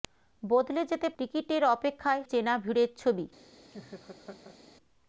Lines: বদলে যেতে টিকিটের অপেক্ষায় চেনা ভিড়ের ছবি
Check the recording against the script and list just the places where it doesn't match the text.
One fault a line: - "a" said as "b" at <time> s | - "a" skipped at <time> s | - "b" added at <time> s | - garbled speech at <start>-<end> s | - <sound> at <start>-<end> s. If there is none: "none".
- laugh at 3.7-4.6 s